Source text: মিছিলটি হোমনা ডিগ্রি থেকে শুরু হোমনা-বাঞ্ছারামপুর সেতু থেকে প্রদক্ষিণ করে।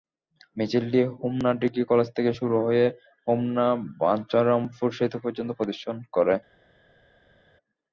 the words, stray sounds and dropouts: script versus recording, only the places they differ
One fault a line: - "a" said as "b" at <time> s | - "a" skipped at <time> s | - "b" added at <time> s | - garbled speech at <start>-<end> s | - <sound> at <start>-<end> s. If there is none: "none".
- "কলেজ" added at 1.9 s
- "হয়ে" added at 2.7 s
- "থেকে" said as "পর্যন্ত" at 5.2 s